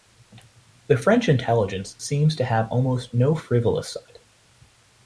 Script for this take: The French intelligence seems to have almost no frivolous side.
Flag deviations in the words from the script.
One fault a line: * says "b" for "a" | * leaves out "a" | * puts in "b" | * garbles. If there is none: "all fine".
all fine